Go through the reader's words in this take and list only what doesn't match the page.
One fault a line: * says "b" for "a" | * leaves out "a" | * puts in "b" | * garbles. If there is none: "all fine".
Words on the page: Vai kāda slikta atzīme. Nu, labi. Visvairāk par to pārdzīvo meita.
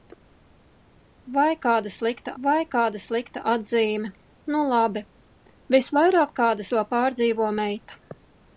* puts in "vai kāda slikta"
* says "kāda" for "par"